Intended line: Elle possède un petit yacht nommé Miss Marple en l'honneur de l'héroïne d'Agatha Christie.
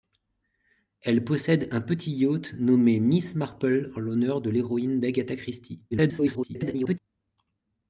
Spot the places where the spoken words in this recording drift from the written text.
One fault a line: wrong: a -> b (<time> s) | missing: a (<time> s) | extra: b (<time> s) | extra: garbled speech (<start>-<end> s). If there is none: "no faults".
extra: garbled speech (5.9-7.0 s)